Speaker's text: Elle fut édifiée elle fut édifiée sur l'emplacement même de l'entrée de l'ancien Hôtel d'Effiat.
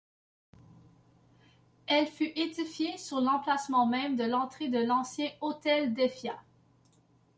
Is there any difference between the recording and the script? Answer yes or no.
yes